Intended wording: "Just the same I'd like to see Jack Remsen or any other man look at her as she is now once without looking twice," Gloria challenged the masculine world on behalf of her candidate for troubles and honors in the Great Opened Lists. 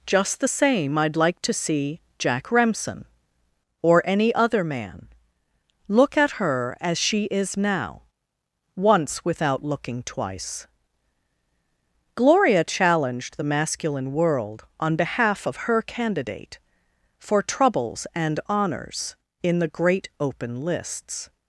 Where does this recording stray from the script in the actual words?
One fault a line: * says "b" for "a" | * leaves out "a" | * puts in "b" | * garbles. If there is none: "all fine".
* says "Open" for "Opened"